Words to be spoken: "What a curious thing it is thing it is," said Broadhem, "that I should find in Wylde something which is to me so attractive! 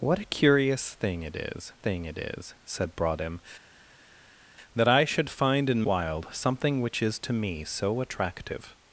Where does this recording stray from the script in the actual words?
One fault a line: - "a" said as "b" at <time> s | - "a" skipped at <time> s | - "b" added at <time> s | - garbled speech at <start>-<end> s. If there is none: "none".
none